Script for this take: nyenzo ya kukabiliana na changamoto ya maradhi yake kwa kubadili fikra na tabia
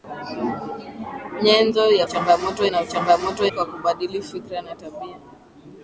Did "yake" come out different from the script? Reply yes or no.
yes